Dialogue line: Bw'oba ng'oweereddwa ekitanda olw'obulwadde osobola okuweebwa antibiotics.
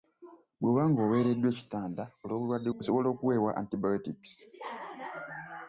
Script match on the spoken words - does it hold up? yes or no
yes